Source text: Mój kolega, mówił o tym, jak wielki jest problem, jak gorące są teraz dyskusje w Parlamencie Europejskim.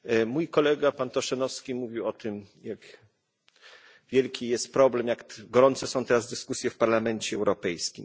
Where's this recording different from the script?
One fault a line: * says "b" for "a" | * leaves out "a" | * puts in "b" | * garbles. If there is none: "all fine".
* puts in "pan Tošenovský"